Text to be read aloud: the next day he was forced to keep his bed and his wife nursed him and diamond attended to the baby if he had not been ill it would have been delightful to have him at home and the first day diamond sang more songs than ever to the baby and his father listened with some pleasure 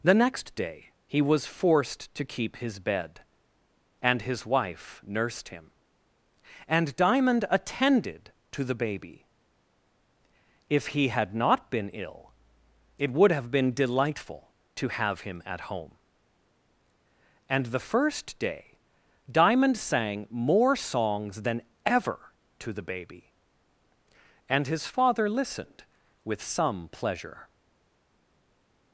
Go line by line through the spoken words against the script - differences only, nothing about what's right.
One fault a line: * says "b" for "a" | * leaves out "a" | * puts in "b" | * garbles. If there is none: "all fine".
all fine